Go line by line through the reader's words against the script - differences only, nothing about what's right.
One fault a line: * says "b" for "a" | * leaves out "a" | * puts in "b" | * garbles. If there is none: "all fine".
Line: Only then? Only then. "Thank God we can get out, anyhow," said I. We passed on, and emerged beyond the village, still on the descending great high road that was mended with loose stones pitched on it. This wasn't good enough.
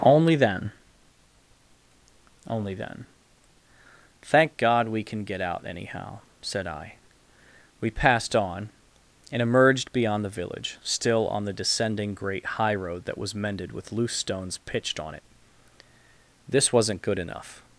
all fine